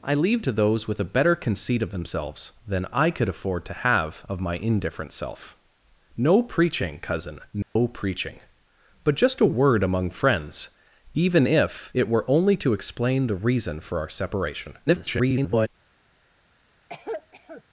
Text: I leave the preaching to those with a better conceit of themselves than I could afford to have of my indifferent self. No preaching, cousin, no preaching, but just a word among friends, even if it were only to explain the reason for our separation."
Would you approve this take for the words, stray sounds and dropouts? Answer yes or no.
no